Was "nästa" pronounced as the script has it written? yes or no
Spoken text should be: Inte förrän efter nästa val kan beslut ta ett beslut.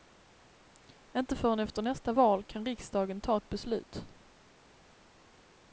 yes